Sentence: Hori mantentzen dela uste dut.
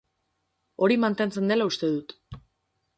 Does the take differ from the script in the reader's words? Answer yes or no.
no